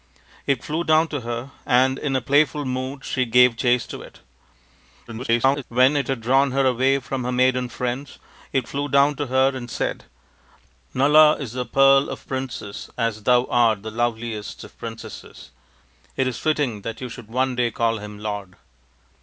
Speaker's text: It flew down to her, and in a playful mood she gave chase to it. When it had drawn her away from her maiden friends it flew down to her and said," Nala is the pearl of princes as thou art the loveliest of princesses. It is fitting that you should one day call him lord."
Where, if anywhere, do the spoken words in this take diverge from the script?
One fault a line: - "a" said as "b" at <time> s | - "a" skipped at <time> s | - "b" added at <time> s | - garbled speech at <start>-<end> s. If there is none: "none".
- garbled speech at 5.1-5.6 s